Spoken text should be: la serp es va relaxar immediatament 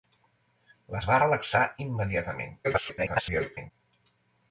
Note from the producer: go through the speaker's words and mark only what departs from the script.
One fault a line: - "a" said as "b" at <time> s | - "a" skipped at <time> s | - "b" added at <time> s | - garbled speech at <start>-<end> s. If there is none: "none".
- "serp" skipped at 1.0 s
- garbled speech at 2.6-3.7 s